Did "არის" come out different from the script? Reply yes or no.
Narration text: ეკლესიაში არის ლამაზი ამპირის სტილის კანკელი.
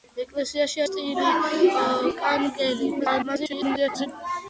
yes